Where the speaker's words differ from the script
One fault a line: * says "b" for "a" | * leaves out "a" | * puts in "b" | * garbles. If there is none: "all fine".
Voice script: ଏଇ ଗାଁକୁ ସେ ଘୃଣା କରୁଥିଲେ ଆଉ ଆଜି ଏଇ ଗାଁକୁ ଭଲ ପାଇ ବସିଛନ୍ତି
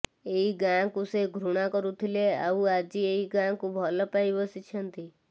all fine